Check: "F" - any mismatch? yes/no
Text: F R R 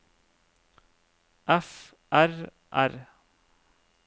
no